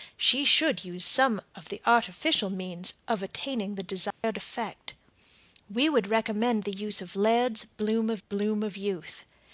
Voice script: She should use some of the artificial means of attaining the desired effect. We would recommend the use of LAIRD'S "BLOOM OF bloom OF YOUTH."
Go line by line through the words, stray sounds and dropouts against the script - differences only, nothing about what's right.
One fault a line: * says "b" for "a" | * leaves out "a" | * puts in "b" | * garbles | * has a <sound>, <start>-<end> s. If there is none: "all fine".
* has a dropout, 4.1-4.2 s